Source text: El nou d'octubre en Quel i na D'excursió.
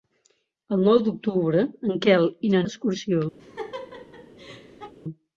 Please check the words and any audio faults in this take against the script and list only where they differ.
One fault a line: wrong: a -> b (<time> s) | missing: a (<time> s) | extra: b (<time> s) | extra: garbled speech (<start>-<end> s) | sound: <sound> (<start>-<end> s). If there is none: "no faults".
sound: laugh (3.4-4.9 s)